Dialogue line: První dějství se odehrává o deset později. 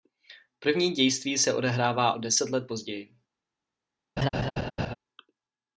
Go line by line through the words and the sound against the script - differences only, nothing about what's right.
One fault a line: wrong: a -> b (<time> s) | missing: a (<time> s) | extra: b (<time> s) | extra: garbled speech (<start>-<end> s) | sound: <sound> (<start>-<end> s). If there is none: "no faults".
extra: let (2.5 s)
sound: laugh (4.2-4.9 s)